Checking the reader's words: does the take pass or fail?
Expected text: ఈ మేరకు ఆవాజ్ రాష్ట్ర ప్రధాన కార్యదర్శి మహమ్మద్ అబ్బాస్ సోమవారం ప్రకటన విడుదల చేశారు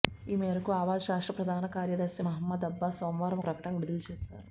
pass